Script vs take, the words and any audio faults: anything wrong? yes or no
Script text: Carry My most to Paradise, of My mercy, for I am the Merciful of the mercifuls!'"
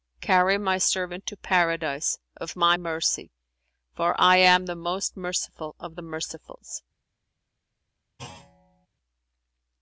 yes